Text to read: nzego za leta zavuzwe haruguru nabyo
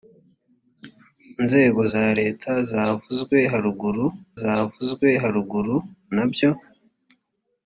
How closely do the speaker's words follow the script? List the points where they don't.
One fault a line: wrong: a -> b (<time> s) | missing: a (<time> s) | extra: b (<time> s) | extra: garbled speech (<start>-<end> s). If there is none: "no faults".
extra: zavuzwe haruguru (4.4 s)